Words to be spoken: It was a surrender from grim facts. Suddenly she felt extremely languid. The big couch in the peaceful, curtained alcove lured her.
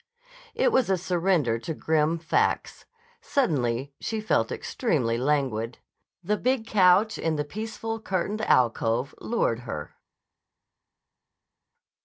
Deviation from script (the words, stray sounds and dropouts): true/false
true